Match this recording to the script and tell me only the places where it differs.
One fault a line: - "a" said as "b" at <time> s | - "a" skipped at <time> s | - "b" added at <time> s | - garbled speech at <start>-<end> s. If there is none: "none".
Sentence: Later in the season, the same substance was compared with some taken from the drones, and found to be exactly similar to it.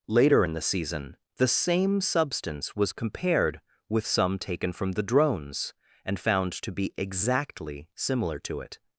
none